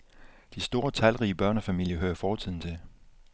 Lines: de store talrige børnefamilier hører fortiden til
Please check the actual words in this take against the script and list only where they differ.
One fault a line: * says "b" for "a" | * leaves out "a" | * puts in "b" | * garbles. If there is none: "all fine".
all fine